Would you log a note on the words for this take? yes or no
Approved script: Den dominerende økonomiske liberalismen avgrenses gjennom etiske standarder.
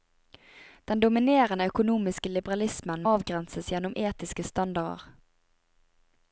no